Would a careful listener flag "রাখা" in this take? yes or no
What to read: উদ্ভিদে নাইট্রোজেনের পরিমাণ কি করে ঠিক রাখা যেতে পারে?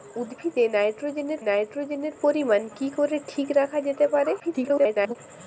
no